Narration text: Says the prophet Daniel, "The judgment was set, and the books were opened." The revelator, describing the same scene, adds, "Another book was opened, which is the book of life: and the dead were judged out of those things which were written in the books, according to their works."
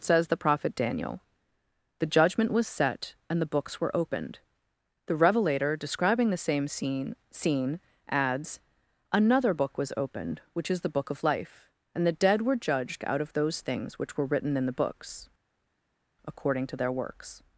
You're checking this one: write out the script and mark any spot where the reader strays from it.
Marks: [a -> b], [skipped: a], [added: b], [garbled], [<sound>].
Says the prophet Daniel, "The judgment was set, and the books were opened." The revelator, describing the same scene, [added: scene] adds, "Another book was opened, which is the book of life: and the dead were judged out of those things which were written in the books, according to their works."